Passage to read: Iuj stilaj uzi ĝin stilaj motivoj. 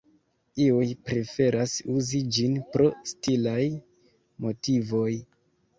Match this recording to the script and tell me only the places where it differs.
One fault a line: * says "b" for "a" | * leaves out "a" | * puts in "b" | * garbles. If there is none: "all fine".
* says "preferas" for "stilaj"
* puts in "pro"